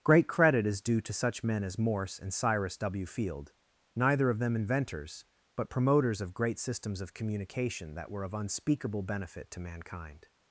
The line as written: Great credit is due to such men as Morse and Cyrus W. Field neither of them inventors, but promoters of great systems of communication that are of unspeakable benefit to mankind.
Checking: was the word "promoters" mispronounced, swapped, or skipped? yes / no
no